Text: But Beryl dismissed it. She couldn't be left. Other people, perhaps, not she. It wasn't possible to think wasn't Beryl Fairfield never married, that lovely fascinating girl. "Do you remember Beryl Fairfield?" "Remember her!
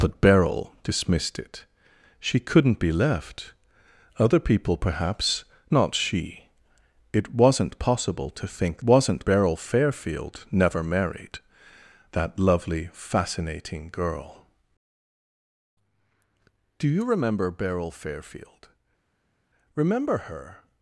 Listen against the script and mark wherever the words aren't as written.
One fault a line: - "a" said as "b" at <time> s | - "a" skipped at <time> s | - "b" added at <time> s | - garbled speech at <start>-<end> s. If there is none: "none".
none